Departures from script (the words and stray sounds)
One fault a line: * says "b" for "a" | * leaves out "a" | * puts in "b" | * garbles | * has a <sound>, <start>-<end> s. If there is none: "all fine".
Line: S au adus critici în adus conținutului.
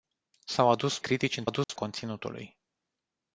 * has a dropout, 1.6-1.7 s